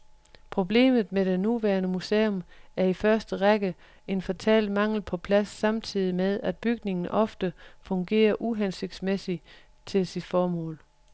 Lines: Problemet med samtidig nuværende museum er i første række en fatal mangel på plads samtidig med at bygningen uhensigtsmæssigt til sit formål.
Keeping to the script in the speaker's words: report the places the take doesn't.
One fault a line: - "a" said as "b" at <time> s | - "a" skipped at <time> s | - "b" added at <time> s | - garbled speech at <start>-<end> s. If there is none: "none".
- "samtidig" said as "det" at 1.2 s
- "ofte fungerer" added at 7.1 s